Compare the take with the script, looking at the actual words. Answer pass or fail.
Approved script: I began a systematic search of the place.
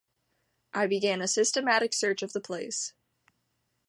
pass